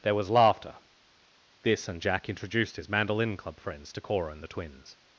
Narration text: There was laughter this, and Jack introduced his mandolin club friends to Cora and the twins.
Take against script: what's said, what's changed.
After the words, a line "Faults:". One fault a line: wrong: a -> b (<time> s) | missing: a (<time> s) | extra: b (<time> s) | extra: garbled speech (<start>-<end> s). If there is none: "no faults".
There was laughter this, and Jack introduced his mandolin club friends to Cora and the twins.
Faults:
no faults